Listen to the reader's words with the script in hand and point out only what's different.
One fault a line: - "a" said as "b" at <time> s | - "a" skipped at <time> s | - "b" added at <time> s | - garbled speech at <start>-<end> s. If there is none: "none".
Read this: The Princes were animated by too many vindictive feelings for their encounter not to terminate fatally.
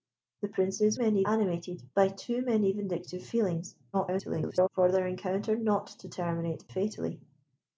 - "were" said as "many" at 0.9 s
- garbled speech at 3.9-4.7 s